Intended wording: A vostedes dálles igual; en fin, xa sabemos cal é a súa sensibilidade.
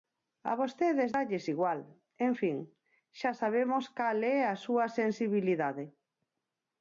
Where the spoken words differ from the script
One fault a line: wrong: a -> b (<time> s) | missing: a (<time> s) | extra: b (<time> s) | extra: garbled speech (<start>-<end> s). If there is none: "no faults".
no faults